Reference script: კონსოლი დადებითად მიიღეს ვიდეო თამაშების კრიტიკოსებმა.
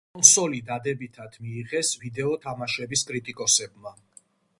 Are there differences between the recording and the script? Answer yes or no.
no